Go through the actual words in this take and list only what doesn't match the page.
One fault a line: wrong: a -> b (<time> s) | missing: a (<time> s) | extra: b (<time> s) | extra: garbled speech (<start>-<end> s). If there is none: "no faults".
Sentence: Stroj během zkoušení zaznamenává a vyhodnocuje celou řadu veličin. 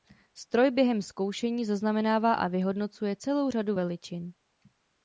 no faults